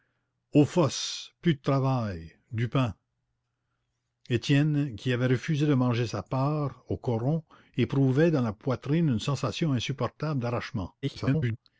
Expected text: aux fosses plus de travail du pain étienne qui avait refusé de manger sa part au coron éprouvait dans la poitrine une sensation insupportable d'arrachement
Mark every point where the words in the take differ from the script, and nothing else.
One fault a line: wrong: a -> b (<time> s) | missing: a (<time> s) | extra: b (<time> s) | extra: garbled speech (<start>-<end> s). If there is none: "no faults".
extra: garbled speech (11.0-11.6 s)